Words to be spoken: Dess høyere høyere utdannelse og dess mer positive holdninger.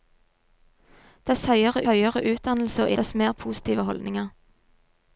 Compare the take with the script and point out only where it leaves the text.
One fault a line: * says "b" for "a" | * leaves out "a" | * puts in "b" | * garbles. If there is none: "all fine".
all fine